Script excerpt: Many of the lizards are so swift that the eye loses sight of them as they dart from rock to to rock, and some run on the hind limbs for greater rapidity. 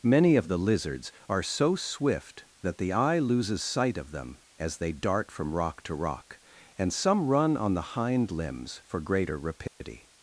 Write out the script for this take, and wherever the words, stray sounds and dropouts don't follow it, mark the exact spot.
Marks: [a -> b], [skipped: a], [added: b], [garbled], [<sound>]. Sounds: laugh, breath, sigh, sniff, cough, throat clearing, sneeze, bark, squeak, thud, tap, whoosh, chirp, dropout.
Many of the lizards are so swift that the eye loses sight of them as they dart from rock to [skipped: to] rock, and some run on the hind limbs for greater rapidity. [dropout]